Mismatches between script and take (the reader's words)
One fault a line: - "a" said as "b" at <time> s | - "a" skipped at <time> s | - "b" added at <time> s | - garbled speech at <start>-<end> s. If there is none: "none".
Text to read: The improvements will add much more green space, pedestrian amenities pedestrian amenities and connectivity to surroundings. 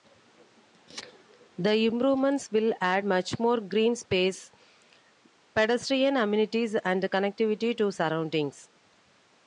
- "pedestrian amenities" skipped at 6.7 s